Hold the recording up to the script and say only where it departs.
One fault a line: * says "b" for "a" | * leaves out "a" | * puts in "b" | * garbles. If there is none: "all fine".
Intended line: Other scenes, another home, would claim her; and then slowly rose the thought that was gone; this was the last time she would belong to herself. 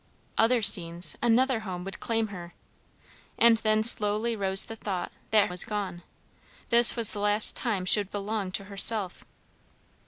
all fine